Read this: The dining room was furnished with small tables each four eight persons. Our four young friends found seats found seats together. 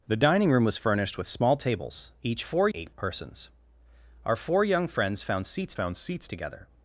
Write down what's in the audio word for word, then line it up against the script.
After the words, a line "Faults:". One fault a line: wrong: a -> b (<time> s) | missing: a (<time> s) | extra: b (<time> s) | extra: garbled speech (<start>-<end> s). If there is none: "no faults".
The dining room was furnished with small tables each four eight persons. Our four young friends found seats found seats together.
Faults:
no faults